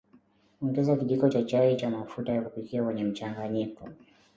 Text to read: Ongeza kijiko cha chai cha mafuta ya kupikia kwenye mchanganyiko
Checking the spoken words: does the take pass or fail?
pass